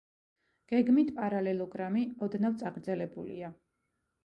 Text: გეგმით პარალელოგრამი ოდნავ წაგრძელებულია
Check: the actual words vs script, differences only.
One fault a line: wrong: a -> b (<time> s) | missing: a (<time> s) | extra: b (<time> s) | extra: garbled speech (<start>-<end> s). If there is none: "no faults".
no faults